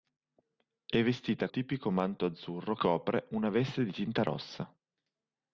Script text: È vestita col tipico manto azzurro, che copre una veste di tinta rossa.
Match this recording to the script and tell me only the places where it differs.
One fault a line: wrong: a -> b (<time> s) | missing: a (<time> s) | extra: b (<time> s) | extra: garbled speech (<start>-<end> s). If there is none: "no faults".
missing: col (1.5 s)
missing: che (2.7 s)